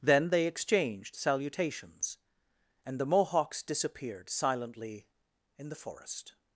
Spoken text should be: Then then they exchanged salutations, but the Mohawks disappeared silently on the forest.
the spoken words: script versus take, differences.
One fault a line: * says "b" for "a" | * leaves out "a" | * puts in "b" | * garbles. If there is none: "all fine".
* leaves out "then"
* says "and" for "but"
* says "in" for "on"